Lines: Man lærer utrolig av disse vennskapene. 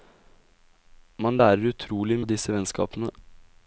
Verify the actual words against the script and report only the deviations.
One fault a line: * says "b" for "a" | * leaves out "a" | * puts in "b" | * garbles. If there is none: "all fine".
all fine